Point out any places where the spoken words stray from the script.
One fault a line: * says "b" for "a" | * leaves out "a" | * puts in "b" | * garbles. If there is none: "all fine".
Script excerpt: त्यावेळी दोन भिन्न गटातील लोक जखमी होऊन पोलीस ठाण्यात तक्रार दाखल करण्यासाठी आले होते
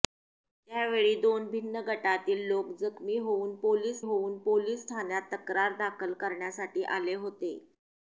* puts in "होऊन पोलीस"